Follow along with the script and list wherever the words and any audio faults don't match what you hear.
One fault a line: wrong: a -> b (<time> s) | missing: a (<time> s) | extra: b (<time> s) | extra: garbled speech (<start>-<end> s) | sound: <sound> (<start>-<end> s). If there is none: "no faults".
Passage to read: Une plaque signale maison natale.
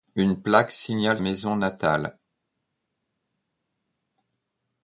no faults